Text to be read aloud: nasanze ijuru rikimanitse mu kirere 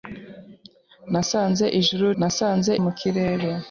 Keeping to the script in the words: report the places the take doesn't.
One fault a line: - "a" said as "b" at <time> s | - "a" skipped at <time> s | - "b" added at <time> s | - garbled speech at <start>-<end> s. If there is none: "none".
- "rikimanitse" said as "nasanze" at 2.2 s